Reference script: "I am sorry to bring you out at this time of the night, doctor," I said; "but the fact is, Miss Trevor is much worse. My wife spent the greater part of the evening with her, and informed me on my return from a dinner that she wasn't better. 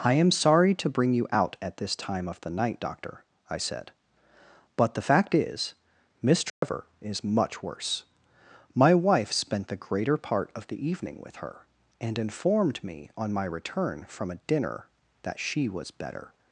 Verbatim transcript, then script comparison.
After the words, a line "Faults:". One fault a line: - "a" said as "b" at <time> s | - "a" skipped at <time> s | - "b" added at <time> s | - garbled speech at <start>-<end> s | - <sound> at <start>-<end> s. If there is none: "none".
"I am sorry to bring you out at this time of the night, doctor," I said; "but the fact is, Miss Trevor is much worse. My wife spent the greater part of the evening with her, and informed me on my return from a dinner that she was better.
Faults:
- dropout at 6.5-6.6 s
- "wasn't" said as "was" at 15.7 s